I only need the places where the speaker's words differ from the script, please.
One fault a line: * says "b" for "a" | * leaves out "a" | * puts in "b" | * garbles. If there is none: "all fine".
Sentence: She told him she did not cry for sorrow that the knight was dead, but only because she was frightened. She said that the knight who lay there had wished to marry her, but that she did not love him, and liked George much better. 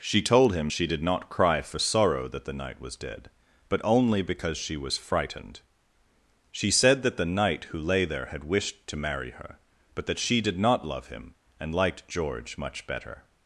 all fine